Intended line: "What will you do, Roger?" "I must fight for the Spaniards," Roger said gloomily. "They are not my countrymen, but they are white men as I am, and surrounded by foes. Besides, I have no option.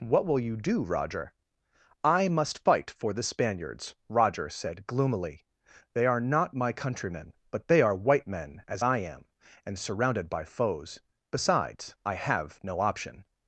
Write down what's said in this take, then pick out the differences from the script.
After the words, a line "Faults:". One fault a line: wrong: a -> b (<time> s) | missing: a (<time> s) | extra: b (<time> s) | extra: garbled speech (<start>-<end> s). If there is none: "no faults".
"What will you do, Roger?" "I must fight for the Spaniards," Roger said gloomily. "They are not my countrymen, but they are white men as I am, and surrounded by foes. Besides, I have no option.
Faults:
no faults